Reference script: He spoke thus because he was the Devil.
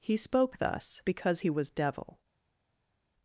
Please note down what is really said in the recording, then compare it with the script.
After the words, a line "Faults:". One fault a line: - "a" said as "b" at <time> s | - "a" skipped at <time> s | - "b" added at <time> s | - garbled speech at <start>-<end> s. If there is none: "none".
He spoke thus because he was Devil.
Faults:
- "the" skipped at 1.7 s